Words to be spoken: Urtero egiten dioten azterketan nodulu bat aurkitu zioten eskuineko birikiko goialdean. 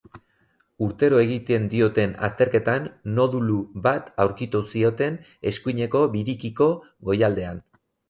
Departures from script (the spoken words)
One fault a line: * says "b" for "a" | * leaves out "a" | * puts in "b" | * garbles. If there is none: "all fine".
all fine